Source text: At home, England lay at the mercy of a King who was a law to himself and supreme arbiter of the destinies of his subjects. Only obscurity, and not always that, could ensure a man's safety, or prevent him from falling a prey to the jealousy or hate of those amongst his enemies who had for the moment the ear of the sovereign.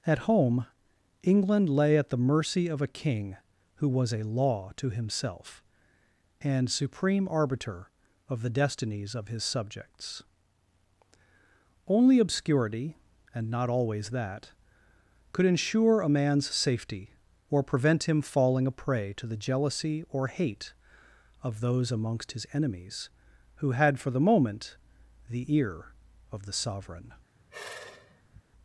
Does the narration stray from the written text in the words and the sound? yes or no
yes